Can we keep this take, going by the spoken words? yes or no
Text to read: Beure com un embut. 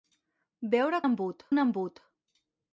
no